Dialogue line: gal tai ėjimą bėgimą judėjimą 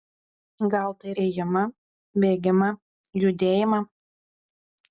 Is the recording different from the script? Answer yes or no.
no